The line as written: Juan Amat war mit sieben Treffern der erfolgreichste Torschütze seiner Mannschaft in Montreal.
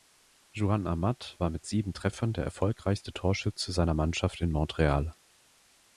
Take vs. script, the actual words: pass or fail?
pass